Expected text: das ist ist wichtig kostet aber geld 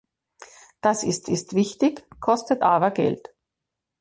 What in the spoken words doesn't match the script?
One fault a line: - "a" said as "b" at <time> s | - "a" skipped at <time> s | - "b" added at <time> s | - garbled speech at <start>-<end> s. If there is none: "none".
none